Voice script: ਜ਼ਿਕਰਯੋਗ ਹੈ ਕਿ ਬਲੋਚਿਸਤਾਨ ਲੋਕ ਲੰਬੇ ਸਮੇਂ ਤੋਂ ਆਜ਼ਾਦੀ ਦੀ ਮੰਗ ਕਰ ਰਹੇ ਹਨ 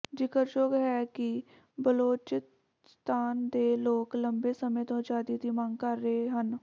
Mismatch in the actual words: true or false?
true